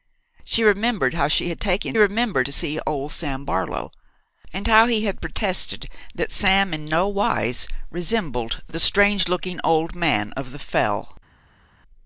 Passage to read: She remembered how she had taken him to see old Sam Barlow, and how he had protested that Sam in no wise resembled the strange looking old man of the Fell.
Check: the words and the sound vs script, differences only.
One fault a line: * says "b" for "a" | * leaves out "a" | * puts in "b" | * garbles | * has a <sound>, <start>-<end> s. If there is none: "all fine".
* says "remembered" for "him"